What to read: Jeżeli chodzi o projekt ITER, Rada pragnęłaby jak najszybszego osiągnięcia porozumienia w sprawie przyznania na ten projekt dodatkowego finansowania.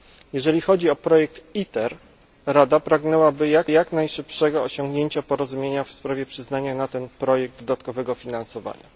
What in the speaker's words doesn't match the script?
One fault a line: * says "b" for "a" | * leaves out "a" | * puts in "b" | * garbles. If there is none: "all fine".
* puts in "jak"